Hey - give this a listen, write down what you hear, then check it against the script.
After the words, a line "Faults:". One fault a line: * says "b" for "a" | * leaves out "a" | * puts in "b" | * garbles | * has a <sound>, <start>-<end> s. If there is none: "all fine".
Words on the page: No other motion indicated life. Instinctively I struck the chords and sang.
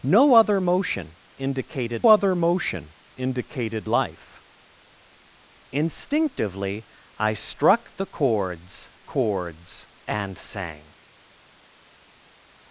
No other motion indicated other motion indicated life. Instinctively I struck the chords chords and sang.
Faults:
* puts in "other motion indicated"
* puts in "chords"